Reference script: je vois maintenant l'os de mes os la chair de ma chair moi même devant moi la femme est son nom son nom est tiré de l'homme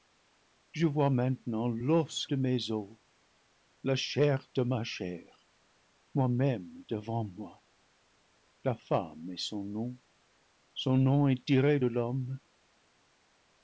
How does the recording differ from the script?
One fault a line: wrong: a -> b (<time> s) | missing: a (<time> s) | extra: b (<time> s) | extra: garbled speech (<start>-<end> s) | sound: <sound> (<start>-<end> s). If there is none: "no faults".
no faults